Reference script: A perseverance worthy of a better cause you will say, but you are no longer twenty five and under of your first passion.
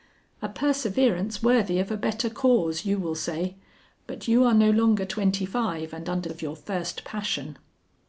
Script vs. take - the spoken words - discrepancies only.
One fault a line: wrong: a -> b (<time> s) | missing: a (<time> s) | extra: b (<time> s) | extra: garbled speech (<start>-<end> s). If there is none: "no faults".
no faults